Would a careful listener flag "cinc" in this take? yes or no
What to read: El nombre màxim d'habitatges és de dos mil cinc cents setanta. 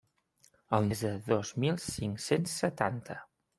no